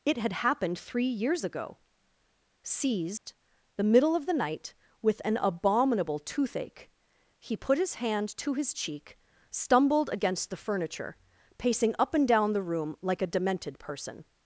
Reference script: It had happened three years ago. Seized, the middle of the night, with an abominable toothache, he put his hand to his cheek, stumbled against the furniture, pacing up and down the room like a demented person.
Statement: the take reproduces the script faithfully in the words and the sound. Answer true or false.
false